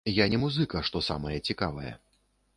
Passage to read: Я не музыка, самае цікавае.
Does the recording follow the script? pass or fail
fail